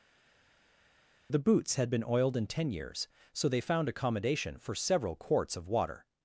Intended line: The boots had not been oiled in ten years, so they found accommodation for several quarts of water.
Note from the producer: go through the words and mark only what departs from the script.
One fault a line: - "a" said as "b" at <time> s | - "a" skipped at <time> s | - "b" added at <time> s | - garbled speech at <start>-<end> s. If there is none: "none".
- "not" skipped at 1.9 s